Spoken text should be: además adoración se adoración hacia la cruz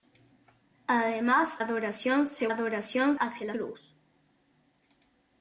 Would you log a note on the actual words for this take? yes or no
no